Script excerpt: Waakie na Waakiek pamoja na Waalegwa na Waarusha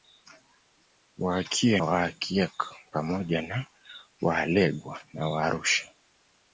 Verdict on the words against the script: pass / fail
fail